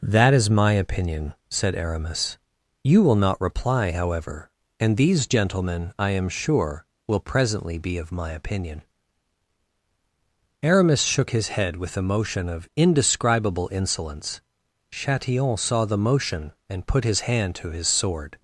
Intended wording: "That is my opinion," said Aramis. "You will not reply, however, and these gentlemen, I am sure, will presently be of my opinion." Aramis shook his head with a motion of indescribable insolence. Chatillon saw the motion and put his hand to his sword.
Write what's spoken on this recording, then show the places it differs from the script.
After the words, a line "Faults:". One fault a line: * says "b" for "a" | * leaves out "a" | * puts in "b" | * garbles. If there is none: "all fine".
"That is my opinion," said Aramis. "You will not reply, however, and these gentlemen, I am sure, will presently be of my opinion." Aramis shook his head with a motion of indescribable insolence. Chatillon saw the motion and put his hand to his sword.
Faults:
all fine